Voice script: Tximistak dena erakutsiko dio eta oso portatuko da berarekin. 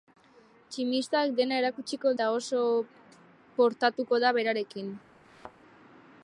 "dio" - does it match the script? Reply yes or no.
no